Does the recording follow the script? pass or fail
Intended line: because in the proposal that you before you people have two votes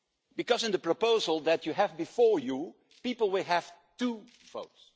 fail